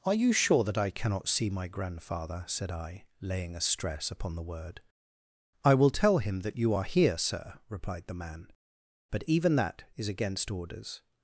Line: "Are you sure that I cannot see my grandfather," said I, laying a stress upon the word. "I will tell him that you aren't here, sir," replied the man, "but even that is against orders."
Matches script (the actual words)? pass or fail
fail